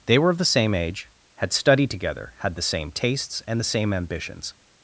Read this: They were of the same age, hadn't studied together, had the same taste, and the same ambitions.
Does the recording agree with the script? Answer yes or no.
no